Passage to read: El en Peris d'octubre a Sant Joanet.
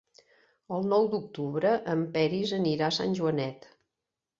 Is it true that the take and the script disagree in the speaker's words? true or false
true